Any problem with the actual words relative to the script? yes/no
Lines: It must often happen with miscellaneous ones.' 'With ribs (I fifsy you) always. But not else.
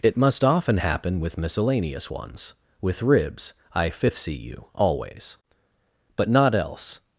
no